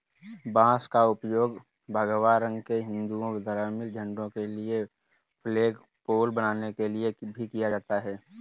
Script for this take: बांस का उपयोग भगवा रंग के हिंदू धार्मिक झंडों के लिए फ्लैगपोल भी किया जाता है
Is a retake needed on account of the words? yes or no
yes